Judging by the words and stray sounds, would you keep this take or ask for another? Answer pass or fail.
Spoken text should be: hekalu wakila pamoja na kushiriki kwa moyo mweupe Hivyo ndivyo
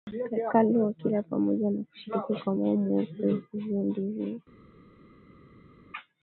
pass